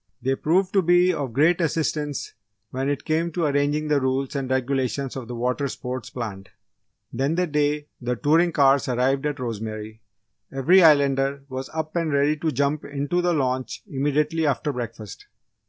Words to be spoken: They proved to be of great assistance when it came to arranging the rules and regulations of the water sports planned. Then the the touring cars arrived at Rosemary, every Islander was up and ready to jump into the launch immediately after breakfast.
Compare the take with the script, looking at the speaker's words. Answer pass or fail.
fail